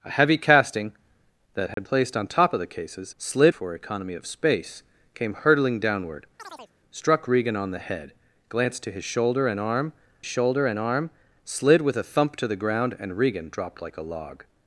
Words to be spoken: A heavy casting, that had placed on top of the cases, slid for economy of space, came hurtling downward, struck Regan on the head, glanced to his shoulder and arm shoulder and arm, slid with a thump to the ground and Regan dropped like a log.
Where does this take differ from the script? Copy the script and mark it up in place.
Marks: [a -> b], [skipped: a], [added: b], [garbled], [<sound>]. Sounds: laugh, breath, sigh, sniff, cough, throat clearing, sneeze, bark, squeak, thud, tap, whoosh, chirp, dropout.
A heavy casting, that had [dropout] placed on top of the cases, slid for economy of space, came hurtling downward, [chirp] struck Regan on the head, glanced to his shoulder and arm shoulder and arm, slid with a thump to the ground and Regan dropped like a log.